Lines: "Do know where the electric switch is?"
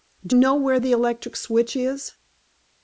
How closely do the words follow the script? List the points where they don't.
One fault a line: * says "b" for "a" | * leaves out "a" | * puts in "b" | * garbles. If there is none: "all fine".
all fine